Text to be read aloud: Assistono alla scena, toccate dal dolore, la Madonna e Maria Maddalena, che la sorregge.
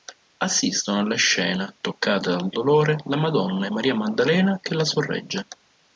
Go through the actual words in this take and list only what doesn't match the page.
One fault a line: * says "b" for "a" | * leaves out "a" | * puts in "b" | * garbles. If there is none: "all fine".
all fine